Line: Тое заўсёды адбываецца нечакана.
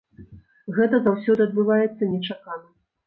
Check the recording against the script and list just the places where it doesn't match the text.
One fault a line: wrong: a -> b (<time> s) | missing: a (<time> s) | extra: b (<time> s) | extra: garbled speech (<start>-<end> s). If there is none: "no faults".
wrong: Тое -> Гэта (0.8 s)